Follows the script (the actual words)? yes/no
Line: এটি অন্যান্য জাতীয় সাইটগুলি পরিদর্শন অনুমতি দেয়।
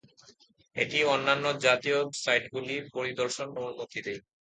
yes